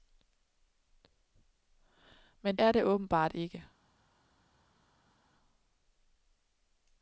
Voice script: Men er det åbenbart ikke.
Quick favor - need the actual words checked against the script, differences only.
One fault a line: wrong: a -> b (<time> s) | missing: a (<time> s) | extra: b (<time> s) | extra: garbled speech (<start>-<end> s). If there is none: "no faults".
no faults